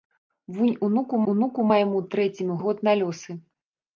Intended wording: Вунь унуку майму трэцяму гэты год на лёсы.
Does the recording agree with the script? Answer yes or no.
no